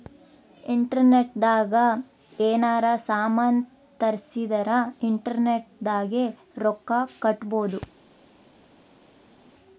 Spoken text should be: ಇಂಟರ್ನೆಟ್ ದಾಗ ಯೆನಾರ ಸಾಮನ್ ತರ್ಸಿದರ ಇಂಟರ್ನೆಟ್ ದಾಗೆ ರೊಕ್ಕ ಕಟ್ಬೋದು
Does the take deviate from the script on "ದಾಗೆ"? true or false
false